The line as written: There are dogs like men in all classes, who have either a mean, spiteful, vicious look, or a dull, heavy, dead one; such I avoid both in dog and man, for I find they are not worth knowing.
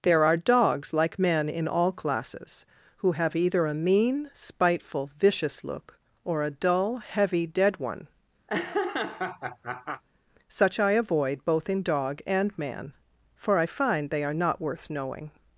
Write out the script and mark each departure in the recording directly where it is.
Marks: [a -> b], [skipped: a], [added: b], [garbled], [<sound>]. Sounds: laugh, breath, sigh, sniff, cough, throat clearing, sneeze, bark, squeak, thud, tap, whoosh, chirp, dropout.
There are dogs like men in all classes, who have either a mean, spiteful, vicious look, or a dull, heavy, dead one; [laugh] such I avoid both in dog and man, for I find they are not worth knowing.